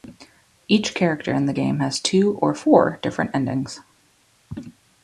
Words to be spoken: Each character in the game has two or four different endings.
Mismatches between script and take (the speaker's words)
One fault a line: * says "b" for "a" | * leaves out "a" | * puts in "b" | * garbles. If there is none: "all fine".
all fine